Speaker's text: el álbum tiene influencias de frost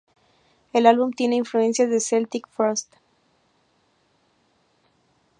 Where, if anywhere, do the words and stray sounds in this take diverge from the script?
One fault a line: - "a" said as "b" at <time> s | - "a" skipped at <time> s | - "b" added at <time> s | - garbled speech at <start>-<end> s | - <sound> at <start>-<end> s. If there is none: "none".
- "celtic" added at 2.0 s